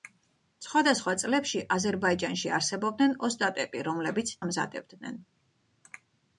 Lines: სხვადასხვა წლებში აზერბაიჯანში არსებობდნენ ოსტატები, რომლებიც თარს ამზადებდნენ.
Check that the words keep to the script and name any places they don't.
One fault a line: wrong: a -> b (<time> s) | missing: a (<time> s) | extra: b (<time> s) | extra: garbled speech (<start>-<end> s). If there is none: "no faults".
missing: თარს (4.3 s)